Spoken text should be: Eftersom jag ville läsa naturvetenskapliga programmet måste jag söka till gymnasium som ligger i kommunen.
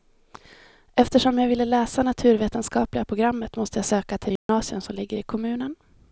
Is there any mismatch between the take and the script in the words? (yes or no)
no